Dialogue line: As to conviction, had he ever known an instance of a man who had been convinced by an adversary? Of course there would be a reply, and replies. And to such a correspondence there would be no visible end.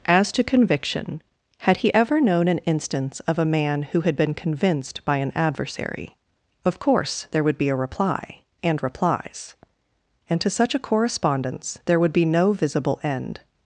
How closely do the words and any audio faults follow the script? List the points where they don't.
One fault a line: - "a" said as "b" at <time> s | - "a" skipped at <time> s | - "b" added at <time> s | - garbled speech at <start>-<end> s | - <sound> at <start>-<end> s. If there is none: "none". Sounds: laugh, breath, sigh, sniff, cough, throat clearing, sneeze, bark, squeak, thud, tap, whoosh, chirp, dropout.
none